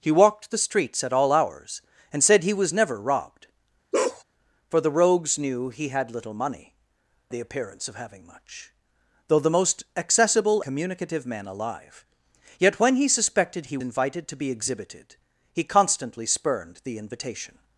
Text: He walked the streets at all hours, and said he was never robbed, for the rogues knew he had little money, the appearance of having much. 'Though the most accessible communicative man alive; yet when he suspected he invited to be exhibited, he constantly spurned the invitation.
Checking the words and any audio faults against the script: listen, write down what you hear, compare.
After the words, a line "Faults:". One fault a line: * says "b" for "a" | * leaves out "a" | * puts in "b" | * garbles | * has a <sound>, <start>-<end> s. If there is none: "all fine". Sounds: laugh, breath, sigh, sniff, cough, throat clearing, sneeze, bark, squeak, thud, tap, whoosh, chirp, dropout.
He walked the streets at all hours, and said he was never robbed, for the rogues knew he had little money, the appearance of having much. 'Though the most accessible communicative man alive; yet when he suspected he invited to be exhibited, he constantly spurned the invitation.
Faults:
* has a bark, 3.9-4.2 s